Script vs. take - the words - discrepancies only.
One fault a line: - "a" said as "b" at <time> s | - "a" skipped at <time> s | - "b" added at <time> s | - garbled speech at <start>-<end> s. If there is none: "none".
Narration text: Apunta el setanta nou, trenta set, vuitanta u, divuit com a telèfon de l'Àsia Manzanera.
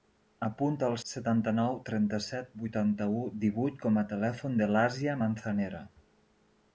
none